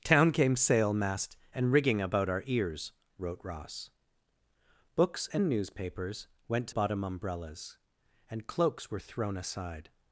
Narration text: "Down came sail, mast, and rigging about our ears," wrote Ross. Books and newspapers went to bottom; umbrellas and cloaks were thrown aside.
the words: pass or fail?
pass